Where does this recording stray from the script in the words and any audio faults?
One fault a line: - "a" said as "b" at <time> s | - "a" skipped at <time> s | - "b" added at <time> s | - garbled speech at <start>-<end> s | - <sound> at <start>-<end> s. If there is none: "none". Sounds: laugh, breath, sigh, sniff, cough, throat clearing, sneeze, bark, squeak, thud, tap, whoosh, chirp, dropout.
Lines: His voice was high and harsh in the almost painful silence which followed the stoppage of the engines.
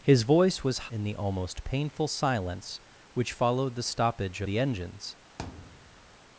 - "high and harsh" skipped at 0.9 s
- "of" skipped at 4.4 s
- thud at 5.4-6.2 s